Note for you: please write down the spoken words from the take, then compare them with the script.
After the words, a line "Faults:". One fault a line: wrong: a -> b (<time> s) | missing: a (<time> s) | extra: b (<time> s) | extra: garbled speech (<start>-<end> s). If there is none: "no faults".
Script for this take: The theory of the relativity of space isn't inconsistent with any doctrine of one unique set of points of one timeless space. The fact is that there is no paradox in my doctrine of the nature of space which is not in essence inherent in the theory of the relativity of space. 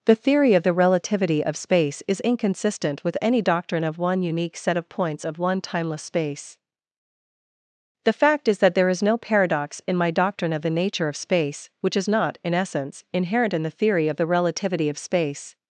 The theory of the relativity of space is inconsistent with any doctrine of one unique set of points of one timeless space. The fact is that there is no paradox in my doctrine of the nature of space which is not in essence inherent in the theory of the relativity of space.
Faults:
wrong: isn't -> is (2.1 s)